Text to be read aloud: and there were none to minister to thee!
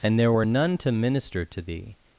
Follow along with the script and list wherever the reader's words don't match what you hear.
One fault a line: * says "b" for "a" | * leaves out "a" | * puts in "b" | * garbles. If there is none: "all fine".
all fine